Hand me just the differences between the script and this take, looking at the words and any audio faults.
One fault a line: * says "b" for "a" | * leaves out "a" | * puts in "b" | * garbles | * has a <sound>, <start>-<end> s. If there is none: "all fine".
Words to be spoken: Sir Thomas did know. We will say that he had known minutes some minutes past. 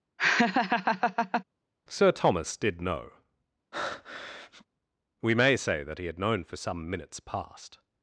* has a laugh, 0.2-1.4 s
* has a breath, 3.7-4.6 s
* says "may" for "will"
* says "for" for "minutes"